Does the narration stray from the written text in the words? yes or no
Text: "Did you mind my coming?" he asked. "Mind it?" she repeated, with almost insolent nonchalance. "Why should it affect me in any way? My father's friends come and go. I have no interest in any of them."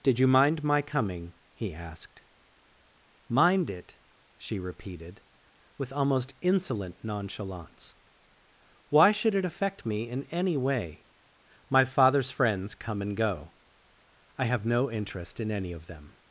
no